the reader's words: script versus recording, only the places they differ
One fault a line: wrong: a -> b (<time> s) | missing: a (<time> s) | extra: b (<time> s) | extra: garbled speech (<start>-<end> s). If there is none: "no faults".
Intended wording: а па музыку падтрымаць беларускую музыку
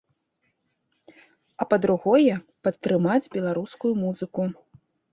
wrong: музыку -> другое (1.9 s)